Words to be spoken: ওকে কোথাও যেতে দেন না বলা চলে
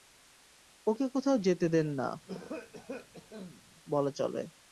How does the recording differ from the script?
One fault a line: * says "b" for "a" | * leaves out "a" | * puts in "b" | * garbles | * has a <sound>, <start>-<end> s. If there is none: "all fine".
* has a cough, 2.3-3.6 s